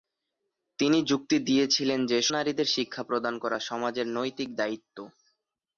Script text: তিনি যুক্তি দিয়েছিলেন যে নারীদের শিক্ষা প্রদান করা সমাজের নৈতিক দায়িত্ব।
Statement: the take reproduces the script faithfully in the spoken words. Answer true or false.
true